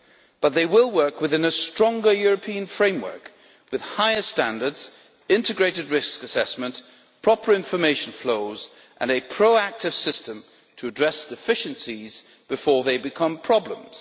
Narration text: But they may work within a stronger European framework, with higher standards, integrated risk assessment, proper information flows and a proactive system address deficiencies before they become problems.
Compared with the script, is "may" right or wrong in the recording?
wrong